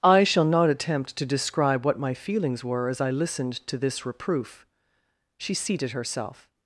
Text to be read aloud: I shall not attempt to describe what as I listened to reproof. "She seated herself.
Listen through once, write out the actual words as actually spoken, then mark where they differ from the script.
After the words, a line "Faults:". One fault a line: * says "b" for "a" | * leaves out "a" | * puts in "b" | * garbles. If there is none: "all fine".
I shall not attempt to describe what my feelings were as I listened to this reproof. "She seated herself.
Faults:
* puts in "my feelings were"
* puts in "this"